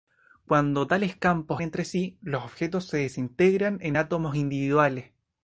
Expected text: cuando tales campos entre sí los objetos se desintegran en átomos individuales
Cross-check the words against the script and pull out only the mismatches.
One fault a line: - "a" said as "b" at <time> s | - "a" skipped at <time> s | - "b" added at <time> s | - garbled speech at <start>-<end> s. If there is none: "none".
none